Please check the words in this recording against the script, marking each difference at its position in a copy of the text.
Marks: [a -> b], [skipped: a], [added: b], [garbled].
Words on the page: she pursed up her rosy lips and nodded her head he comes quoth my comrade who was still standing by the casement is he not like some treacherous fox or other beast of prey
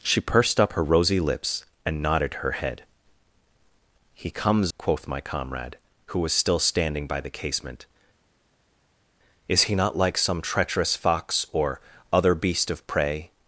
she pursed up her rosy lips and nodded her head he comes quoth my comrade who was still standing by the casement is he not like some treacherous fox or other beast of prey